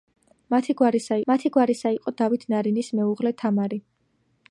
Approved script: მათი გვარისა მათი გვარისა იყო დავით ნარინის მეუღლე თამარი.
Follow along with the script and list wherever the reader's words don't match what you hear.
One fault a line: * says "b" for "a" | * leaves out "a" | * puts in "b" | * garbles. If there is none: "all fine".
all fine